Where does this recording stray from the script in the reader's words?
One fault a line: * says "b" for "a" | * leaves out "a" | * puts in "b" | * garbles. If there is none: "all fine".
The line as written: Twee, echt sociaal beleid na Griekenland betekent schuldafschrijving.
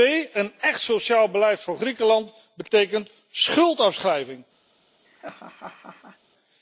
* puts in "een"
* says "voor" for "na"